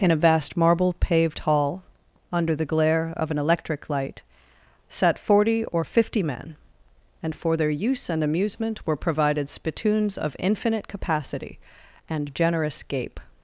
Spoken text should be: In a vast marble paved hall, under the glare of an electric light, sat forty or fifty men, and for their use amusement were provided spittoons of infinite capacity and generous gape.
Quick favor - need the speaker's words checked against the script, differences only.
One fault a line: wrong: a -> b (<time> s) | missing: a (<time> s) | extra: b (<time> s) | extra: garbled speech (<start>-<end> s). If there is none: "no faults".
extra: and (8.1 s)